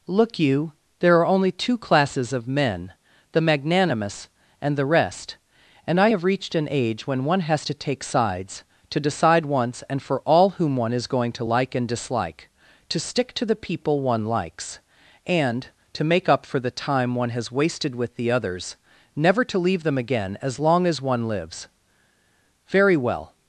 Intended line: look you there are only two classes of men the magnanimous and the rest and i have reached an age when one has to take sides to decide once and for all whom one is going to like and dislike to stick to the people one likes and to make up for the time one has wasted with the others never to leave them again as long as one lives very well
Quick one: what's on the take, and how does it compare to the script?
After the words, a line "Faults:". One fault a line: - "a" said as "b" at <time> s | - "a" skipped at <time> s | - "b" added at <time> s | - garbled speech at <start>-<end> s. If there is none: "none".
look you there are only two classes of men the magnanimous and the rest and i have reached an age when one has to take sides to decide once and for all whom one is going to like and dislike to stick to the people one likes and to make up for the time one has wasted with the others never to leave them again as long as one lives very well
Faults:
none